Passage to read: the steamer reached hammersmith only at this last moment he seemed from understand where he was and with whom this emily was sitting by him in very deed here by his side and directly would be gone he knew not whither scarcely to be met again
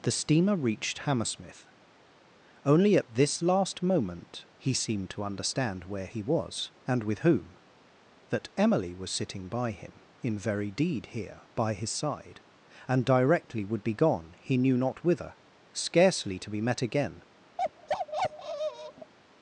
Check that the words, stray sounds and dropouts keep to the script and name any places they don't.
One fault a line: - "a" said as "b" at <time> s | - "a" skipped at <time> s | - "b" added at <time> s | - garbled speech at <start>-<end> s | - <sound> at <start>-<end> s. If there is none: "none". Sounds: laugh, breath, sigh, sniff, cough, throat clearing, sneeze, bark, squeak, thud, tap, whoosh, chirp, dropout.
- "from" said as "to" at 5.1 s
- "this" said as "that" at 8.3 s
- bark at 17.6-19.1 s